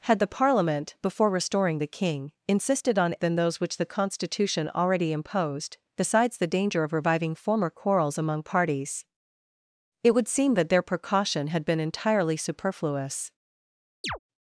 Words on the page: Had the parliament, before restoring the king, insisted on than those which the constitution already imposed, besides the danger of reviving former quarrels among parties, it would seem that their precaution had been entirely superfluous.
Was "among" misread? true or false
false